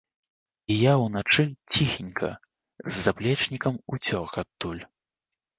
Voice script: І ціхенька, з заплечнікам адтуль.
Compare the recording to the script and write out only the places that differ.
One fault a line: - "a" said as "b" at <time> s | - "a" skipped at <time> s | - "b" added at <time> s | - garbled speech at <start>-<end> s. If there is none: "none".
- "я ўначы" added at 0.8 s
- "уцёк" added at 4.0 s